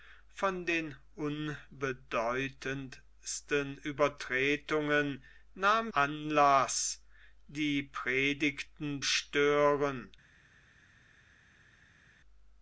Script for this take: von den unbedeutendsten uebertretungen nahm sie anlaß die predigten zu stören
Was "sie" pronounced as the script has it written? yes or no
no